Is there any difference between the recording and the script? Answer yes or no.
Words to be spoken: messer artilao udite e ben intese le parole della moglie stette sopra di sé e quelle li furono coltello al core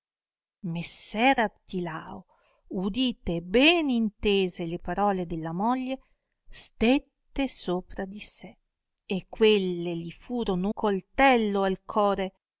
no